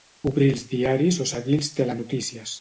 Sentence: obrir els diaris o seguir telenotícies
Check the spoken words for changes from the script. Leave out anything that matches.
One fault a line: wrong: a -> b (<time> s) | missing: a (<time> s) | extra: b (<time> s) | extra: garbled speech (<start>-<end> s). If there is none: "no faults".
extra: els (1.6 s)